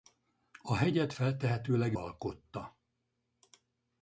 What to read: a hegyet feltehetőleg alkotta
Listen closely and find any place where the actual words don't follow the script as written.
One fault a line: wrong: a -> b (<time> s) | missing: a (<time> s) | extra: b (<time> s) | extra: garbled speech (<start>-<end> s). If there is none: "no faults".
no faults